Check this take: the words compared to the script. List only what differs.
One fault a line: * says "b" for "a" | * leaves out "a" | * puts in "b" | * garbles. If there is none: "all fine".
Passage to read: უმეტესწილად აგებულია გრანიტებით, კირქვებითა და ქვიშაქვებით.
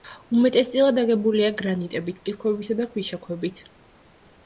all fine